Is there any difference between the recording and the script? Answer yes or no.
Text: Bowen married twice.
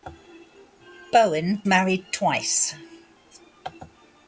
no